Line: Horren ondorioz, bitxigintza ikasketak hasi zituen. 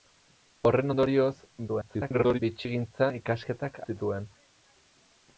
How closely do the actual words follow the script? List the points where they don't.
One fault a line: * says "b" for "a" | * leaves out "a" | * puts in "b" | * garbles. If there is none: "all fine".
* garbles
* leaves out "hasi"